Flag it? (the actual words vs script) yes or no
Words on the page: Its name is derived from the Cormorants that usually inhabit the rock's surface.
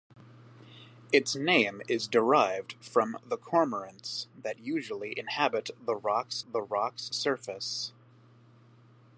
yes